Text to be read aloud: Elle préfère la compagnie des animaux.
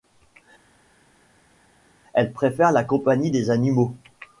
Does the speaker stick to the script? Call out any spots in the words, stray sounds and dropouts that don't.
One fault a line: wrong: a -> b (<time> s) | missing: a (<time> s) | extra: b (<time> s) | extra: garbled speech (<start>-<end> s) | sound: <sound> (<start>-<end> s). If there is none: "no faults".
no faults